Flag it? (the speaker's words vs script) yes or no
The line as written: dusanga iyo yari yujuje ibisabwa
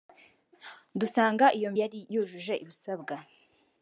no